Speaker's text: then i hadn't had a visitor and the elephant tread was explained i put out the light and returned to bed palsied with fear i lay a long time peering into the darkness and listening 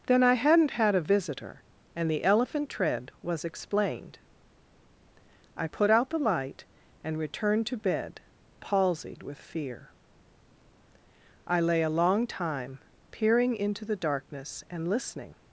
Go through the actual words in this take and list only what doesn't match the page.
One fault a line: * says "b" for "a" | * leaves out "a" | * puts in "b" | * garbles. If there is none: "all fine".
all fine